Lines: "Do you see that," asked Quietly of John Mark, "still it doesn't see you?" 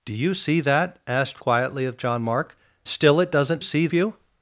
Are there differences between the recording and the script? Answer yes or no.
no